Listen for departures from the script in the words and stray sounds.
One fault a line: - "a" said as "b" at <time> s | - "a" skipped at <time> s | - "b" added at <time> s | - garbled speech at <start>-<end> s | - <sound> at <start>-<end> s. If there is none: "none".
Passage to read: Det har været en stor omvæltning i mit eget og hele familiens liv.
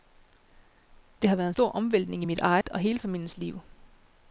- dropout at 2.6-2.6 s